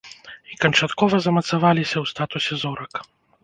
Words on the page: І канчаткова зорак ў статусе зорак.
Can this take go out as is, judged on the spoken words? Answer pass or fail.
fail